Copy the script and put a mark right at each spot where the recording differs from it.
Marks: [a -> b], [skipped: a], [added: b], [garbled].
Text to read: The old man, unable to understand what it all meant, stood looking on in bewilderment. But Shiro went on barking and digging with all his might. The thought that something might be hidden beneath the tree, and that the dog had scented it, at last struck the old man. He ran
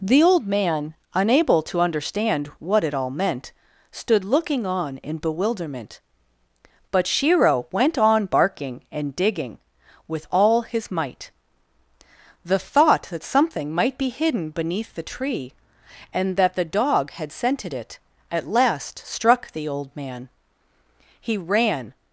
The old man, unable to understand what it all meant, stood looking on in bewilderment. But Shiro went on barking and digging with all his might. The thought that something might be hidden beneath the tree, and that the dog had scented it, at last struck the old man. He ran